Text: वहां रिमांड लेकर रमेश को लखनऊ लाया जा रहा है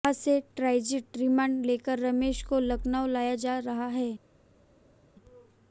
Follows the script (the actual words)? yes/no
no